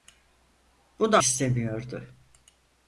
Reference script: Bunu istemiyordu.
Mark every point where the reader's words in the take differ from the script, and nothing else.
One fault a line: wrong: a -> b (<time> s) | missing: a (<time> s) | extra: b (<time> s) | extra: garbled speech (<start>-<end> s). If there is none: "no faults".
no faults